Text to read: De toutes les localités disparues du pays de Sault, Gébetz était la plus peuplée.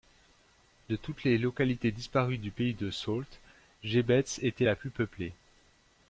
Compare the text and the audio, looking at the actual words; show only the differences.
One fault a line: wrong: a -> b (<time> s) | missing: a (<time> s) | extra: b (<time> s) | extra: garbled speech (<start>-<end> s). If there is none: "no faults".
no faults